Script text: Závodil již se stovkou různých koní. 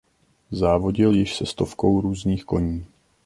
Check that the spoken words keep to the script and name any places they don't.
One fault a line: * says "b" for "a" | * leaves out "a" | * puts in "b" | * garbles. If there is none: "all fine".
all fine